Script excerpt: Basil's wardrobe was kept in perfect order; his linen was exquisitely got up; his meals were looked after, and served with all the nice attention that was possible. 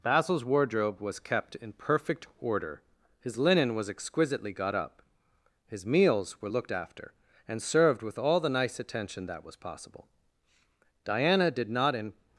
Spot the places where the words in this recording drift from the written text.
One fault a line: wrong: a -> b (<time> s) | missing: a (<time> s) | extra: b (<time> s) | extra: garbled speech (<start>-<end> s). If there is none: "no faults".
extra: Diana did not in (11.0 s)